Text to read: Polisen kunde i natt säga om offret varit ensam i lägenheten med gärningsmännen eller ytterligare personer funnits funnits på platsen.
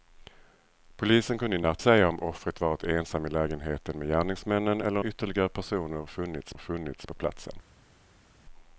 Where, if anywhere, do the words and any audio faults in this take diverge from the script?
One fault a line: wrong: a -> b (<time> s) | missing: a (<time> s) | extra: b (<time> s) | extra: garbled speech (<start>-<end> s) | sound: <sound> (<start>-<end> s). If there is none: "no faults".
no faults